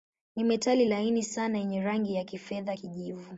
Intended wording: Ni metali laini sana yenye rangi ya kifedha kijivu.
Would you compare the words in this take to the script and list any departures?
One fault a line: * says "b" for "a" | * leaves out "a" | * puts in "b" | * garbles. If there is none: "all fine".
all fine